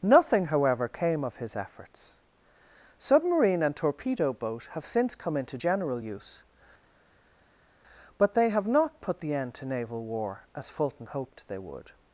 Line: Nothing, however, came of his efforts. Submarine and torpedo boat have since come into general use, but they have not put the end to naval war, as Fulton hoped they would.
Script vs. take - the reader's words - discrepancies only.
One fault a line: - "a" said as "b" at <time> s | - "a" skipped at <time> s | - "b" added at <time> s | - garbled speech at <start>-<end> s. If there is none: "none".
none